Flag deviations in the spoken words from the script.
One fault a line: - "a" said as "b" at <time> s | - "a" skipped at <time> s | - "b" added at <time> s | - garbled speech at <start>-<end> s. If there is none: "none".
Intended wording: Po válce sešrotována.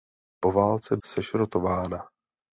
none